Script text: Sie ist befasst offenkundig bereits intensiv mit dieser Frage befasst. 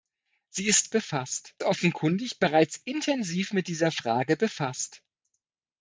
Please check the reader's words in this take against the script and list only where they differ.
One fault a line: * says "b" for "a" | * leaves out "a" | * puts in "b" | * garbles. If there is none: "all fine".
all fine